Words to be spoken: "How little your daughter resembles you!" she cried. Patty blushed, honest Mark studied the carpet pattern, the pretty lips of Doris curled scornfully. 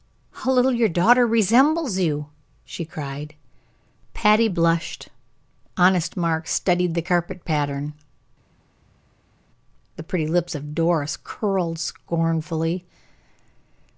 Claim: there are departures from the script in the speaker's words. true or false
false